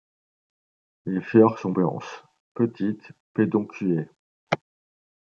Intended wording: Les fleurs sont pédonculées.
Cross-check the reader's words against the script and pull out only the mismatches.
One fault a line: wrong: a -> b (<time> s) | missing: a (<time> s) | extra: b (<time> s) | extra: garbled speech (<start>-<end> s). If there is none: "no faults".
extra: blanches petites (1.7 s)